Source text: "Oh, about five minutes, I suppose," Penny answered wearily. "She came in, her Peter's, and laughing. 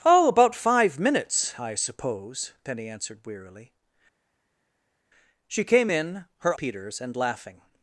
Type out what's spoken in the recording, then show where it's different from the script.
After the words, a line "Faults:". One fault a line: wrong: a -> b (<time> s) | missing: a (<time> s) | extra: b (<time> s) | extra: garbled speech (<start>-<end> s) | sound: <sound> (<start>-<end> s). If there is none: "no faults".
"Oh, about five minutes, I suppose," Penny answered wearily. "She came in, her Peter's, and laughing.
Faults:
no faults